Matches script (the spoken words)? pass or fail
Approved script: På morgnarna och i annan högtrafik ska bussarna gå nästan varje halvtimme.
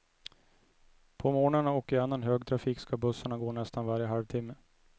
pass